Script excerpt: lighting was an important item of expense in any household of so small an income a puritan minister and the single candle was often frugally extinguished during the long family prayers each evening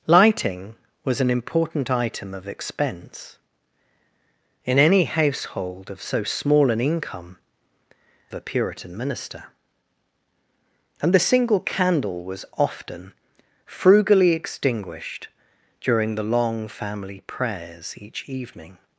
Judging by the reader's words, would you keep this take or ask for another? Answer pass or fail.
pass